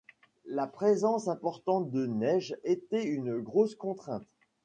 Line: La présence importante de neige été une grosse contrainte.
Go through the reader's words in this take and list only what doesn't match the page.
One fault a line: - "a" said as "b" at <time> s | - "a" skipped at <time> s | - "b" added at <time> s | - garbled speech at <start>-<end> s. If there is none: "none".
none